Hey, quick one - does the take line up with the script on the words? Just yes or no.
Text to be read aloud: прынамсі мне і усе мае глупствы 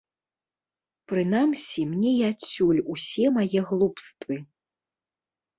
no